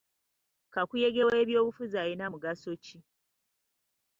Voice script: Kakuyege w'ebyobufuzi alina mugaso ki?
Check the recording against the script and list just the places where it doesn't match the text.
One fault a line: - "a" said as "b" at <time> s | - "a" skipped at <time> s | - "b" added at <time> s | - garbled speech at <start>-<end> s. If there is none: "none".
none